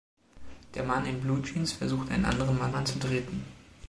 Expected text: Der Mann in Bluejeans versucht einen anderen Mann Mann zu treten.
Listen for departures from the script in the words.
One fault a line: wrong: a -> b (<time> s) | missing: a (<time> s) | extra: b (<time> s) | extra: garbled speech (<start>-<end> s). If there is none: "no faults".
no faults